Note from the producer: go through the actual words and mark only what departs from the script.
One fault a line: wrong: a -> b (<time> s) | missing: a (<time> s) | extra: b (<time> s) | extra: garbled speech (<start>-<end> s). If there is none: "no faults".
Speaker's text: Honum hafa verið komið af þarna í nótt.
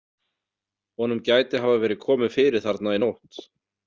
extra: gæti (1.3 s)
wrong: af -> fyrir (2.4 s)